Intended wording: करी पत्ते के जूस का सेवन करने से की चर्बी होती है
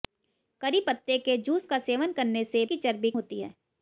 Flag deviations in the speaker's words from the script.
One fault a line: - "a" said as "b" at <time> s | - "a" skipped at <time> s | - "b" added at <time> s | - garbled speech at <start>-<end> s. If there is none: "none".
none